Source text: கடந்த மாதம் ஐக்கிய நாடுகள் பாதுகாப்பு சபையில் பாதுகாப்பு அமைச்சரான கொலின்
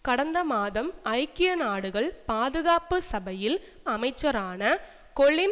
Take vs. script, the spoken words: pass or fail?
fail